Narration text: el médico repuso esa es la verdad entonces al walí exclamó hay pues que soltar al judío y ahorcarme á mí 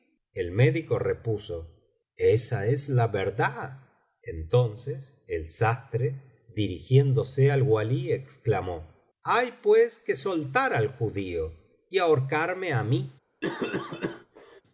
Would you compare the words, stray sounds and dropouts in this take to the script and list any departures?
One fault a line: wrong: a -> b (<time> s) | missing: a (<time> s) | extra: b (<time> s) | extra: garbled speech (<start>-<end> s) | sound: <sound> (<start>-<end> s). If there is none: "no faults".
extra: el sastre dirigiéndose (5.3 s)
sound: cough (13.4-14.6 s)